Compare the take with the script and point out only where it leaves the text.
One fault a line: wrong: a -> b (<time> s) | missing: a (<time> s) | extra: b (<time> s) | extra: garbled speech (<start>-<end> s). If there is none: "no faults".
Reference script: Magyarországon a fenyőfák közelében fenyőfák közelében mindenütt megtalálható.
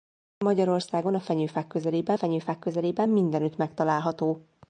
no faults